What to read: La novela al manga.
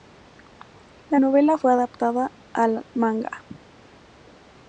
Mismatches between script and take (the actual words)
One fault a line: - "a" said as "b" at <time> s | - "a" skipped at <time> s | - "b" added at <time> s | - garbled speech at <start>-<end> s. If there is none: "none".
- "fue adaptada" added at 1.5 s